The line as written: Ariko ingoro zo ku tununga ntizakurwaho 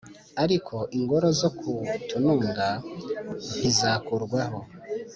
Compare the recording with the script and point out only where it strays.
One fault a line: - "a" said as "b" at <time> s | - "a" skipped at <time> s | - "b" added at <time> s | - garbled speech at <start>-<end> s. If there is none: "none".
none